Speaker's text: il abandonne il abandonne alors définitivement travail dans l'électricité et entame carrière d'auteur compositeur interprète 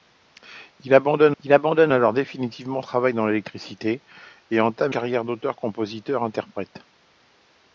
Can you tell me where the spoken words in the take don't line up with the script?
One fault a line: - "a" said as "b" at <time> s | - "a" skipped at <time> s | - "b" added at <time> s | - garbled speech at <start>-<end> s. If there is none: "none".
none